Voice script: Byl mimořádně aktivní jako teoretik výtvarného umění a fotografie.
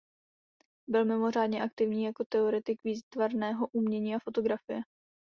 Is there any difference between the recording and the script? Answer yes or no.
no